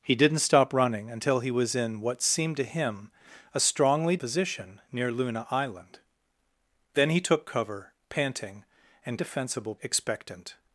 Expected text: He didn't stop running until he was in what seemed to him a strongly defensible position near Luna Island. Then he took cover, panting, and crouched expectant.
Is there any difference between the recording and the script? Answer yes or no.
yes